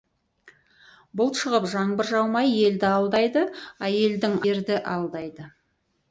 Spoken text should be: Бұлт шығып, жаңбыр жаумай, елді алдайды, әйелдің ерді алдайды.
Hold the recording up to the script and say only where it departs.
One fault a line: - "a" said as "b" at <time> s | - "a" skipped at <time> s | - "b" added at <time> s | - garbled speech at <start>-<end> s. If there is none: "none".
none